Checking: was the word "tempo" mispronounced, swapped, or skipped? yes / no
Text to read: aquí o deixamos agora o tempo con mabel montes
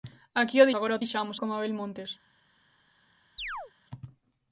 yes